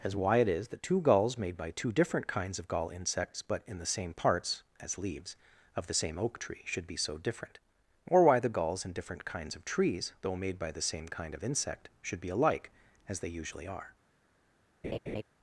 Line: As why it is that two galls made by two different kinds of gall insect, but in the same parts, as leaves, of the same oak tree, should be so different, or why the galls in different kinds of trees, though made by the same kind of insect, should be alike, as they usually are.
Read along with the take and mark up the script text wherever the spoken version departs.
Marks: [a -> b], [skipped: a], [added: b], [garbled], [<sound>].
As why it is that two galls made by two different kinds of gall [insect, -> insects] but in the same parts, as leaves, of the same oak tree, should be so different, or why the galls in different kinds of trees, though made by the same kind of insect, should be alike, as they usually are. [laugh]